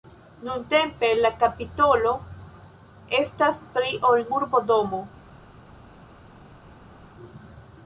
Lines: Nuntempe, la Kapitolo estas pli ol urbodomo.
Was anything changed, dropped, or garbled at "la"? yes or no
no